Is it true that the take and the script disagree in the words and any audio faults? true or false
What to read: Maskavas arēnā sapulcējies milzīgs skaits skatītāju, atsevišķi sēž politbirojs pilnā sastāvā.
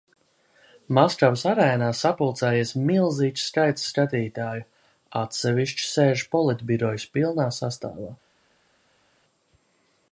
false